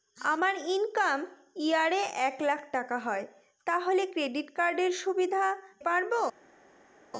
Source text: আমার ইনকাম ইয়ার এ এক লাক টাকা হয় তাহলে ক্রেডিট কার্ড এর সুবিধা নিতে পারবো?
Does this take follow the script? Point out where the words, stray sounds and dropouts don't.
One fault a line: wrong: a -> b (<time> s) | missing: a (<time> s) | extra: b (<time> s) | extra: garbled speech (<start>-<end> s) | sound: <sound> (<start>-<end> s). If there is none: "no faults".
missing: নিতে (5.4 s)